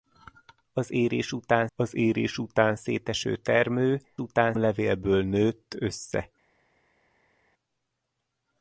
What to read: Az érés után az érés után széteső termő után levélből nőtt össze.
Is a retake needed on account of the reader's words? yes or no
no